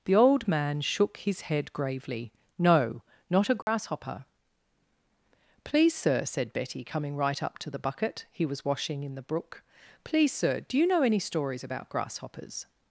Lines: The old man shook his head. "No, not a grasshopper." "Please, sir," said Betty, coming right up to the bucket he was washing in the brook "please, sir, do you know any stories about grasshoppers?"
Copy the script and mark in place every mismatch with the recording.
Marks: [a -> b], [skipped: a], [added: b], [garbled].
The old man shook his head. [added: gravely] "No, not a grasshopper." "Please, sir," said Betty, coming right up to the bucket he was washing in the brook "please, sir, do you know any stories about grasshoppers?"